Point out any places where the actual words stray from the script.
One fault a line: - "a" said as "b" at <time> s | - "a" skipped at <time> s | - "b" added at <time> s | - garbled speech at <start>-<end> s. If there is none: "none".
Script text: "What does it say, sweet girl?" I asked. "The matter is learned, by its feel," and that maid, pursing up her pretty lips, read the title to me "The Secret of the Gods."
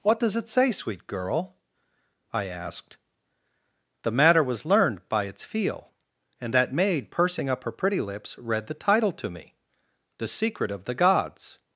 - "is" said as "was" at 4.4 s